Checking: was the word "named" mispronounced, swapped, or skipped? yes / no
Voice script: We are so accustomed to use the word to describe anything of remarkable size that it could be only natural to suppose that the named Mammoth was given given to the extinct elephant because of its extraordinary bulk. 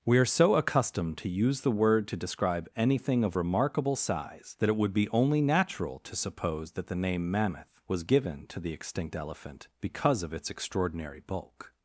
yes